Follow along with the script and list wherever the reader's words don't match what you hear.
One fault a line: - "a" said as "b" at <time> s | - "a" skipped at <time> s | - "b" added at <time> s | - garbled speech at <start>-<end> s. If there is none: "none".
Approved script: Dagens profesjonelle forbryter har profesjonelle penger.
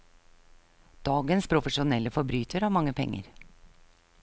- "profesjonelle" said as "mange" at 2.8 s